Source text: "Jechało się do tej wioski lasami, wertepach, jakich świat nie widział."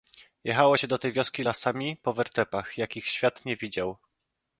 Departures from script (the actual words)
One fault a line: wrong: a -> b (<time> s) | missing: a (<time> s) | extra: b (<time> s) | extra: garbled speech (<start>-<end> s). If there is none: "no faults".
extra: po (2.0 s)